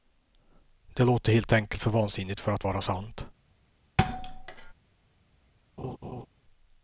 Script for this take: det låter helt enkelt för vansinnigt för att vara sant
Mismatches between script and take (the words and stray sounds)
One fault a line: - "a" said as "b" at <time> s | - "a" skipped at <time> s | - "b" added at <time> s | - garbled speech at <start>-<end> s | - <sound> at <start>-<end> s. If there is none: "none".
- thud at 4.0-4.7 s
- laugh at 5.8-6.3 s